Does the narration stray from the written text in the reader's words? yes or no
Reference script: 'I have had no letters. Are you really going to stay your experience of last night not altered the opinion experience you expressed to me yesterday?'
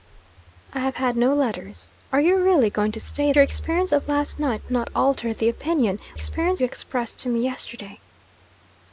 no